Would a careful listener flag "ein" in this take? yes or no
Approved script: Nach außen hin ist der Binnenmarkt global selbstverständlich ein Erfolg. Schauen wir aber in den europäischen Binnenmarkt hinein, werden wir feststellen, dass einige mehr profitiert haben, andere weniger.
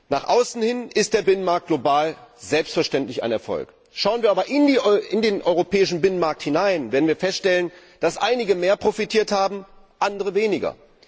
no